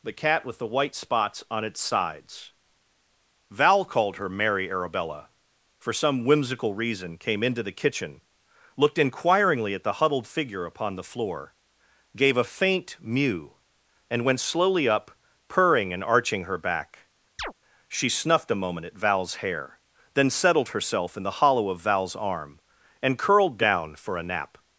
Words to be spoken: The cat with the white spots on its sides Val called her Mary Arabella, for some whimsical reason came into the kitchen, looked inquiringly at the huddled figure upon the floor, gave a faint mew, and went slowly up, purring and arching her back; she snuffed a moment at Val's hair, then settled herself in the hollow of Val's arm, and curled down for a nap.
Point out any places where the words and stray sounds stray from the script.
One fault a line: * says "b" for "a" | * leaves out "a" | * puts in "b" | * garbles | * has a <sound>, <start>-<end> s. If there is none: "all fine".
* has a chirp, 17.4-17.5 s